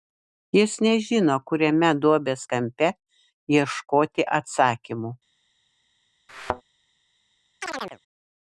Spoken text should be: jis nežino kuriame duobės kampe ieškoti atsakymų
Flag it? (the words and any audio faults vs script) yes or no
yes